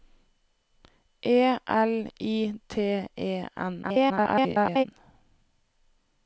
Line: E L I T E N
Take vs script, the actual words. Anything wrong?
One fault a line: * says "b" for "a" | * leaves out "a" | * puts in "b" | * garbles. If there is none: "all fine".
* garbles